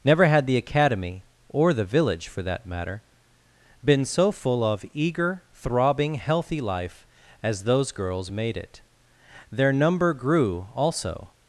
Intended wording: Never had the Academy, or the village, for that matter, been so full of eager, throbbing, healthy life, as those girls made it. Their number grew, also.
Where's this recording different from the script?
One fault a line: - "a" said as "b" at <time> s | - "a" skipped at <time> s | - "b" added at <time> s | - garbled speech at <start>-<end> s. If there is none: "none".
none